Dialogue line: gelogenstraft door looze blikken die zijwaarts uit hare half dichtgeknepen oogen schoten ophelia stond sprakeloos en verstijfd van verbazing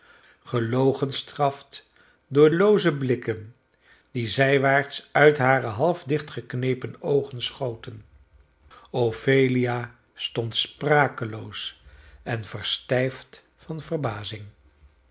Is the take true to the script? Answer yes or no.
yes